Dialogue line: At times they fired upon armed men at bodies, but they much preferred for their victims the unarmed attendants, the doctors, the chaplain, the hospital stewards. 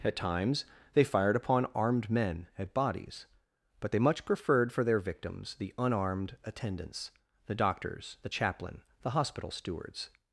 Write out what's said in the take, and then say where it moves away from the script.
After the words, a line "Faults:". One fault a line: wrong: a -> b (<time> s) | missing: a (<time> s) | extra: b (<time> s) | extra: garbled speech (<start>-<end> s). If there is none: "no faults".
At times they fired upon armed men at bodies, but they much preferred for their victims the unarmed attendants, the doctors, the chaplain, the hospital stewards.
Faults:
no faults